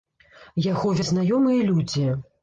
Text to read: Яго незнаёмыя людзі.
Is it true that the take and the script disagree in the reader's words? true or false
false